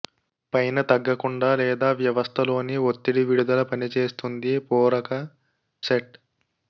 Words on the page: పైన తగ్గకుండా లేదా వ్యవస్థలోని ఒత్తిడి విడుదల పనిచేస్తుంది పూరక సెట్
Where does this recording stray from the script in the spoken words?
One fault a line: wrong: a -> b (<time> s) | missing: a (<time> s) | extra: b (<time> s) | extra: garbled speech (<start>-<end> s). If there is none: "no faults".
no faults